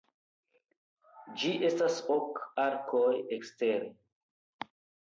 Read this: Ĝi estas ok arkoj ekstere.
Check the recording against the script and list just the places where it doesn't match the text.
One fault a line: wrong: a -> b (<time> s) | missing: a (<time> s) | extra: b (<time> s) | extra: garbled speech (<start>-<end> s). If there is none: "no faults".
no faults